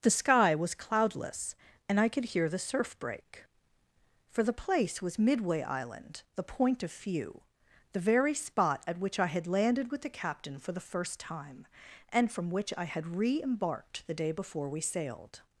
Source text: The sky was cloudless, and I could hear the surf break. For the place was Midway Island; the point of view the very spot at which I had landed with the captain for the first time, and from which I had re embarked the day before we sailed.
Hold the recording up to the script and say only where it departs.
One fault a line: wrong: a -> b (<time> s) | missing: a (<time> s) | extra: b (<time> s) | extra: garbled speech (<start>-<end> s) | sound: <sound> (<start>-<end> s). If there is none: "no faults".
wrong: view -> few (6.9 s)